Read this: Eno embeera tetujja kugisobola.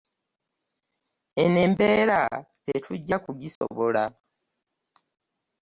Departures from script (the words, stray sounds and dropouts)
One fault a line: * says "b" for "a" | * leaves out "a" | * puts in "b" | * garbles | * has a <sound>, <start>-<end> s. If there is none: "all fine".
* has a dropout, 3.6-3.6 s